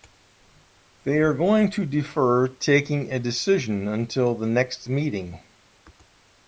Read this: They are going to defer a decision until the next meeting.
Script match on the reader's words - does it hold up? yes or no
no